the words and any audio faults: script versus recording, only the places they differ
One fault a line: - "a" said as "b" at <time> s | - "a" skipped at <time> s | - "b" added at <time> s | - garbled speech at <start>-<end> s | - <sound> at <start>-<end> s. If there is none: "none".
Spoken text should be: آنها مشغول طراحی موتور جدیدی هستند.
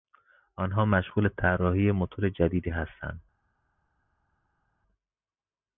none